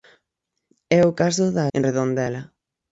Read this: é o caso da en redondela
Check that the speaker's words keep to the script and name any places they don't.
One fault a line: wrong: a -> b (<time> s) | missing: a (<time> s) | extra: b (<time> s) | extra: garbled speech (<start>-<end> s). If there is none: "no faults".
no faults